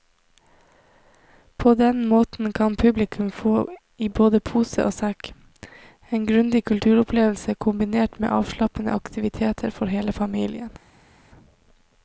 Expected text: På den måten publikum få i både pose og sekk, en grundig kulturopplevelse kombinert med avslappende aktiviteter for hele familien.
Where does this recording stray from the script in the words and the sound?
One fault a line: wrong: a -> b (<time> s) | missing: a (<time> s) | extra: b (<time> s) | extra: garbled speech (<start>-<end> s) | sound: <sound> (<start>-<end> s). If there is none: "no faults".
extra: kan (2.5 s)